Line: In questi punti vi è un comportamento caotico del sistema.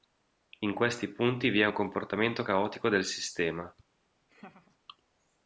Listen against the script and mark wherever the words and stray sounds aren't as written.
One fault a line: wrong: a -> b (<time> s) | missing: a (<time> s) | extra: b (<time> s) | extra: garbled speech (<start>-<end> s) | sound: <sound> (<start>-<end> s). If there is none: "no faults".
sound: laugh (4.3-4.8 s)